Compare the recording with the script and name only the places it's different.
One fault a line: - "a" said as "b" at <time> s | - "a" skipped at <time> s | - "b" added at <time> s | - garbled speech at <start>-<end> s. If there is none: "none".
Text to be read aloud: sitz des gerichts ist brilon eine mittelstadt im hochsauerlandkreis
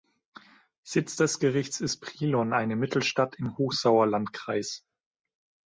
none